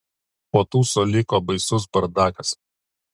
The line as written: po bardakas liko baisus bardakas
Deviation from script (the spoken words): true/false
true